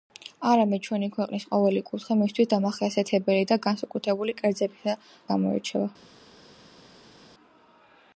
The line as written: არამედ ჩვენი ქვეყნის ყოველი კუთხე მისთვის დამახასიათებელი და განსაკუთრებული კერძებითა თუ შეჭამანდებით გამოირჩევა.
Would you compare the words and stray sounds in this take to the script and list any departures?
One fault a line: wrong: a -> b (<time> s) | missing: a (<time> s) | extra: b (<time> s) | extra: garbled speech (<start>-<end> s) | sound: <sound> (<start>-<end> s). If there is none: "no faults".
missing: თუ შეჭამანდებით (5.0 s)